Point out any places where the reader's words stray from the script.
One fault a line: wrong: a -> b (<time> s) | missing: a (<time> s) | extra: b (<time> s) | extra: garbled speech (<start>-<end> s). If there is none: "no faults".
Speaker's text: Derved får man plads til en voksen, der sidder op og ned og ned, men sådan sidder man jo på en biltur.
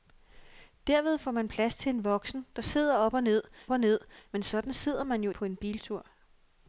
no faults